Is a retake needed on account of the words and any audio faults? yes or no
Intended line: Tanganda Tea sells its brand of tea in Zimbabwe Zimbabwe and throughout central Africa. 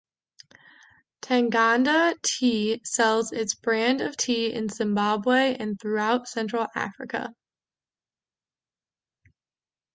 yes